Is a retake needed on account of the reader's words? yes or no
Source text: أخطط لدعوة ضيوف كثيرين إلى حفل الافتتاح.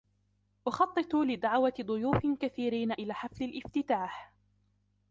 no